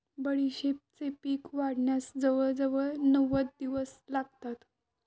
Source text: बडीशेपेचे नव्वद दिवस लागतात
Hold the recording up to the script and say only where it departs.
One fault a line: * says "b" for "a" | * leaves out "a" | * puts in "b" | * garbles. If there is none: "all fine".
* puts in "पीक वाढण्यास जवळजवळ"